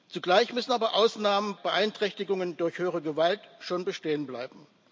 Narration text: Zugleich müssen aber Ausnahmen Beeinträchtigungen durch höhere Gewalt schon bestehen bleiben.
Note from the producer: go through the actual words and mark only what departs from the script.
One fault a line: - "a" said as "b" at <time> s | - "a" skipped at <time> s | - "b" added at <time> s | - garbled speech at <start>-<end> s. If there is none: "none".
none